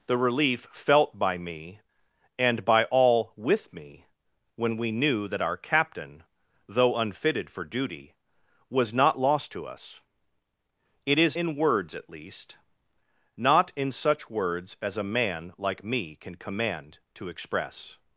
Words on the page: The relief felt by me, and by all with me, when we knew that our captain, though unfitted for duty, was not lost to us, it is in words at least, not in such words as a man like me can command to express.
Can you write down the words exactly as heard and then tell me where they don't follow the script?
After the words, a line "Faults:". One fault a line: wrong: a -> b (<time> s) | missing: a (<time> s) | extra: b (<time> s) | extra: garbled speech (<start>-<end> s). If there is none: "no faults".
The relief felt by me, and by all with me, when we knew that our captain, though unfitted for duty, was not lost to us, it is in words at least, not in such words as a man like me can command to express.
Faults:
no faults